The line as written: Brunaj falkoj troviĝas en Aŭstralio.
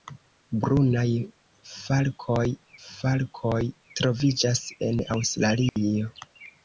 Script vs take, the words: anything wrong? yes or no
yes